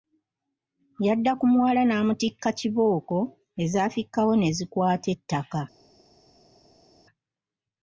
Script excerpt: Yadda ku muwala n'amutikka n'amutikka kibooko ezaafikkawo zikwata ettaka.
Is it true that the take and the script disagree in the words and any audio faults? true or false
true